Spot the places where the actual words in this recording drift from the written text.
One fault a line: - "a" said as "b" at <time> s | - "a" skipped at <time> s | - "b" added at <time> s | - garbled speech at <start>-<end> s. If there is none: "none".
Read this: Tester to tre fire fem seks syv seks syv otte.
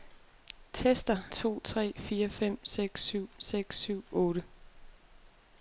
none